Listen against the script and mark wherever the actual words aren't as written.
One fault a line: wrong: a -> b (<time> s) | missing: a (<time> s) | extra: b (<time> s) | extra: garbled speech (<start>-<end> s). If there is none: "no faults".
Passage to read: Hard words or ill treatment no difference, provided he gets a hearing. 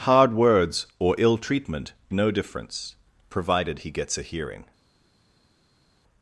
no faults